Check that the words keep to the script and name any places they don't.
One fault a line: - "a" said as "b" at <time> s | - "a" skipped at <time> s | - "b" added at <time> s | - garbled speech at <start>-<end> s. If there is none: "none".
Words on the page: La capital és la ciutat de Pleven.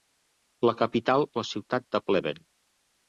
- "és" skipped at 1.3 s